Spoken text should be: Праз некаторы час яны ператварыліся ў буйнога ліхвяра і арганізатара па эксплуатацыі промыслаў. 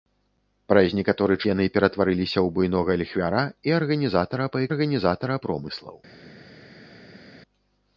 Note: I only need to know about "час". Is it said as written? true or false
false